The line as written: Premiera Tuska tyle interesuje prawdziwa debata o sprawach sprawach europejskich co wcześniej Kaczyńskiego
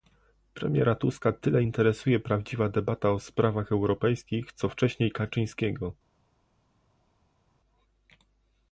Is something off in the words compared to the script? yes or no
yes